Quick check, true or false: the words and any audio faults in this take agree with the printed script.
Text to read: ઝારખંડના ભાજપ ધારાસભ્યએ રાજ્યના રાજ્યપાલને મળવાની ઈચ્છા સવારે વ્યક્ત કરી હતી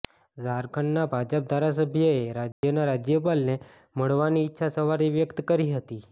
false